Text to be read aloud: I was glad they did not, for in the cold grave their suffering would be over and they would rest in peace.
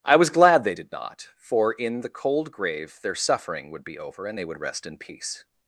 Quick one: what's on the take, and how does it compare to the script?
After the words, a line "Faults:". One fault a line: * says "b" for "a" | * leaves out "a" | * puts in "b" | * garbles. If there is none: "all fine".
I was glad they did not, for in the cold grave their suffering would be over and they would rest in peace.
Faults:
all fine